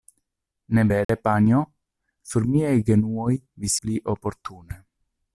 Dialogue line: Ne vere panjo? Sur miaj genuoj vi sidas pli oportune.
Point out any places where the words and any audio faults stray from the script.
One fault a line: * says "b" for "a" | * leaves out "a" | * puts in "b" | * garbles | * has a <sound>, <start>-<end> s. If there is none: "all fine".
* has a dropout, 1.0-1.1 s
* leaves out "sidas"